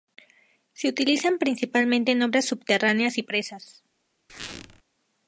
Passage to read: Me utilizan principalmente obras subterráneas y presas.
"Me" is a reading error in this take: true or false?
true